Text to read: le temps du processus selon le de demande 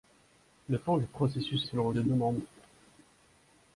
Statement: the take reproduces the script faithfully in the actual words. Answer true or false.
true